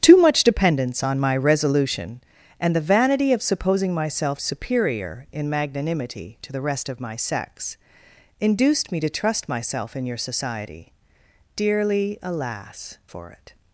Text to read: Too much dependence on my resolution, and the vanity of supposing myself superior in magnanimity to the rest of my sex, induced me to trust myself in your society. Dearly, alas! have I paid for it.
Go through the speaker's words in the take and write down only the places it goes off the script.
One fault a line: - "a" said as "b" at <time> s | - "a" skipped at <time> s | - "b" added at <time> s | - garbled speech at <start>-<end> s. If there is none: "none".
- "have I paid" skipped at 13.0 s